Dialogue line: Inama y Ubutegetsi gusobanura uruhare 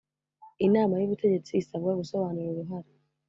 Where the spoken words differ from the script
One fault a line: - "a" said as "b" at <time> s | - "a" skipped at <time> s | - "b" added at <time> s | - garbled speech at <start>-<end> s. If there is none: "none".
- "isabwa" added at 1.6 s